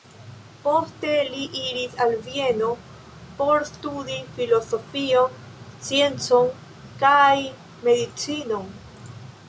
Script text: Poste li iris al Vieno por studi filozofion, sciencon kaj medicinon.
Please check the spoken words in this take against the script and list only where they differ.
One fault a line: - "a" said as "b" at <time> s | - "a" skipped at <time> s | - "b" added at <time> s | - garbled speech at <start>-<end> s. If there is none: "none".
none